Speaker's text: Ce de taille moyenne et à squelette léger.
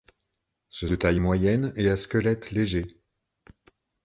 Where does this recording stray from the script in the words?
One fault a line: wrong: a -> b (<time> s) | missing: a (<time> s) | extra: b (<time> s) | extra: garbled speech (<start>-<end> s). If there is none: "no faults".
no faults